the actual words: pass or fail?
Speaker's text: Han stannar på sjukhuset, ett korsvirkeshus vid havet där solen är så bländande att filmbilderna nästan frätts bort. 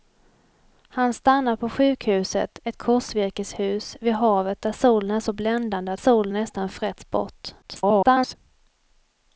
fail